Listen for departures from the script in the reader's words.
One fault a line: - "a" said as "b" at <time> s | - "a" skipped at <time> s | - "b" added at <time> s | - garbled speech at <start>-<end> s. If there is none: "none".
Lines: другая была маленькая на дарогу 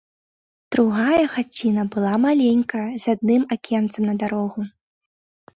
- "хаціна" added at 1.3 s
- "з адным акенцам" added at 3.0 s